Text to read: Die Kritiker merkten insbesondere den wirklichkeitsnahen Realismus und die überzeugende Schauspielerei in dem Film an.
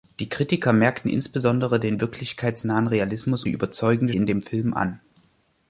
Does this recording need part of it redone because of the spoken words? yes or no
yes